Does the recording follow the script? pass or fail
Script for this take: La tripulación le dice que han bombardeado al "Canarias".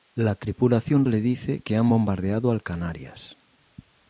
pass